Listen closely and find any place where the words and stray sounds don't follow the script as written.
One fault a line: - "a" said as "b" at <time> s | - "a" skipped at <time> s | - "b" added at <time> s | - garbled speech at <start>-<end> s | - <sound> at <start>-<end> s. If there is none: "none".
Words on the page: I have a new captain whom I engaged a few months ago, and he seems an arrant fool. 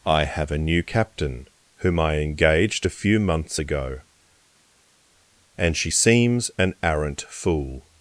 - "he" said as "she" at 5.7 s